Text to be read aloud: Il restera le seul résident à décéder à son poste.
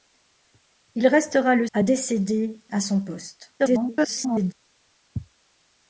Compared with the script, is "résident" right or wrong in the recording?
wrong